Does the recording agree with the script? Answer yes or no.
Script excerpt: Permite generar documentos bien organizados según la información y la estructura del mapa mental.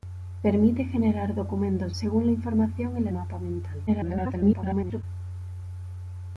no